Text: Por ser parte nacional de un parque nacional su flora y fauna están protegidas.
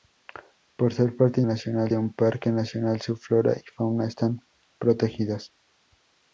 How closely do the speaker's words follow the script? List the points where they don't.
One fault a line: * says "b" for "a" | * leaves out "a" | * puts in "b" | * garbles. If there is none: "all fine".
all fine